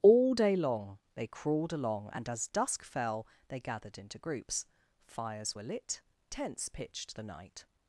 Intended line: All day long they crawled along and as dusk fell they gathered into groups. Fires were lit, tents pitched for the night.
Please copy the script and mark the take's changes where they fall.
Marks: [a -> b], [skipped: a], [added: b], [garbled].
All day long they crawled along and as dusk fell they gathered into groups. Fires were lit, tents pitched [skipped: for] the night.